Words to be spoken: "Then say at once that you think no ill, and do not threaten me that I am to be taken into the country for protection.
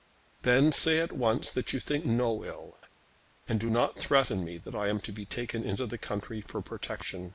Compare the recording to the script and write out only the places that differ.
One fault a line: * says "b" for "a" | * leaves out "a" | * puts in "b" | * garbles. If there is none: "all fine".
all fine